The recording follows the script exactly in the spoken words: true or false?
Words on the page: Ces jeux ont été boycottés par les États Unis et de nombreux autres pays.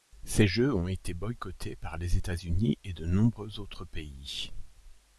true